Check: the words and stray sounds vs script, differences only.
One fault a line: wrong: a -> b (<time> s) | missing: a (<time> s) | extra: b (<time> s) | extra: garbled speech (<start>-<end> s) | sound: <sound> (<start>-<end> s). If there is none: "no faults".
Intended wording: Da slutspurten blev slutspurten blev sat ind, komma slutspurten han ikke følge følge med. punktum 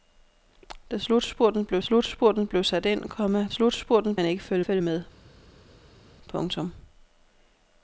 no faults